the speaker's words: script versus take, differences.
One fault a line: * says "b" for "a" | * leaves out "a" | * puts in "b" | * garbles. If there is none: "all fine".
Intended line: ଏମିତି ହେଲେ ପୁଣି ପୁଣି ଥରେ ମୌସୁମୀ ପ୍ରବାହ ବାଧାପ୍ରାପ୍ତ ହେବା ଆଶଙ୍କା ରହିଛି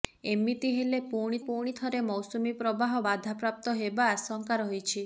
all fine